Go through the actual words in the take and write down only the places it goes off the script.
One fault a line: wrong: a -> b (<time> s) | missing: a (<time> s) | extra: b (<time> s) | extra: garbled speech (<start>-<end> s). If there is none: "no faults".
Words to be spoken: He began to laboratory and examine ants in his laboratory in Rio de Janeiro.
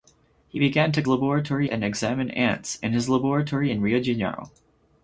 no faults